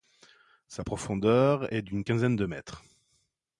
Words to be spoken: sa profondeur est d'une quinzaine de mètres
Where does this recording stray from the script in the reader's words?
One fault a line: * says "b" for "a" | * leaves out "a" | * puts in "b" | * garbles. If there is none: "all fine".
all fine